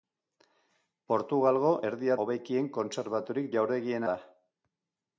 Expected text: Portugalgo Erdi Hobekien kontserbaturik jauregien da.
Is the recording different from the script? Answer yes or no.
no